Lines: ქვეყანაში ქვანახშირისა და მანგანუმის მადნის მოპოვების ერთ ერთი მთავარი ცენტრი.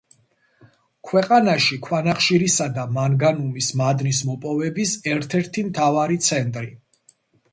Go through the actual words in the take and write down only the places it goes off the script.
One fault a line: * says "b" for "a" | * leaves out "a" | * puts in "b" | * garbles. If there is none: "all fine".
all fine